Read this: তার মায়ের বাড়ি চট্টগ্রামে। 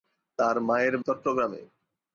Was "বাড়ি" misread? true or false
true